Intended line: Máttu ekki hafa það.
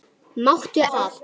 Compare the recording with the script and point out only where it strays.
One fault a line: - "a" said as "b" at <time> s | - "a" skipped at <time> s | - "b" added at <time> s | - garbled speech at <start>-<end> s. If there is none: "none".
- "ekki hafa" skipped at 0.8 s